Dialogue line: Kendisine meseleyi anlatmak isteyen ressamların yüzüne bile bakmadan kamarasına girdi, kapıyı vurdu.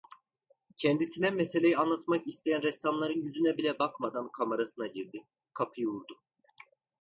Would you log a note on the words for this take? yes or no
no